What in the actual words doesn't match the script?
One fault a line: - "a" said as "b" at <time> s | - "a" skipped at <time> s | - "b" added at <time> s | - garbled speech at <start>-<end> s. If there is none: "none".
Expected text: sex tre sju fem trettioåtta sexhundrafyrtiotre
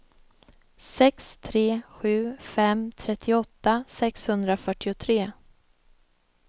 none